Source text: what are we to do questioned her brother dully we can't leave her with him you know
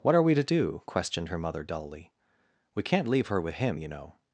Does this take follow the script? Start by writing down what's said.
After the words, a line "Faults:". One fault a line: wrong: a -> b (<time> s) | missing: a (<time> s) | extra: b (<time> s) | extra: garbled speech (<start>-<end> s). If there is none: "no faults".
what are we to do questioned her mother dully we can't leave her with him you know
Faults:
wrong: brother -> mother (1.4 s)